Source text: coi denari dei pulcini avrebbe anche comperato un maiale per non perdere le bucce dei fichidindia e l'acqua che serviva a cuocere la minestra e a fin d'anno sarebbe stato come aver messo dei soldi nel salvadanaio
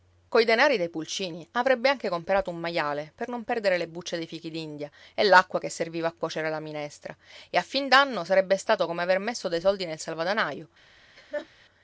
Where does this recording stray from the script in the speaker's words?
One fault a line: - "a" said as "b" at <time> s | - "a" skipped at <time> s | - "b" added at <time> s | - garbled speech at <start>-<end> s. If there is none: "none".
none